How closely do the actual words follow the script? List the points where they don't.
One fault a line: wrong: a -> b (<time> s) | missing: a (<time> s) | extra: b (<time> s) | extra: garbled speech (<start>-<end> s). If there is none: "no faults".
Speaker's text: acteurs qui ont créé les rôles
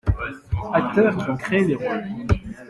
no faults